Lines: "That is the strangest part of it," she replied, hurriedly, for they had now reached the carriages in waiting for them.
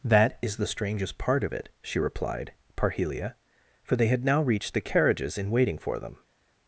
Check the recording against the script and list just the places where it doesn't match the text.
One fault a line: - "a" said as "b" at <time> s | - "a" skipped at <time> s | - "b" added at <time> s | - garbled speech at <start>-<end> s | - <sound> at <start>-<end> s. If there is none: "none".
- "hurriedly" said as "parhelia" at 2.8 s